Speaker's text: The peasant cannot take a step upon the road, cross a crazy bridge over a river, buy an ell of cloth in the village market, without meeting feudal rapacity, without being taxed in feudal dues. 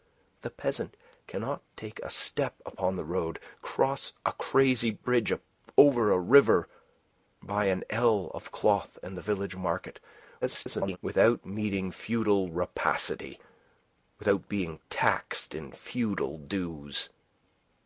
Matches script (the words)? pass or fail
fail